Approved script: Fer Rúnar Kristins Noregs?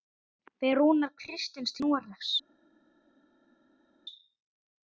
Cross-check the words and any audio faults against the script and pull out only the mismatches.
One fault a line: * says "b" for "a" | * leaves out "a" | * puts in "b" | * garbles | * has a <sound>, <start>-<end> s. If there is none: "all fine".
all fine